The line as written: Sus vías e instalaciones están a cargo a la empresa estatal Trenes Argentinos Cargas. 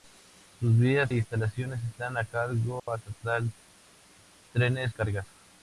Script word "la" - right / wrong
wrong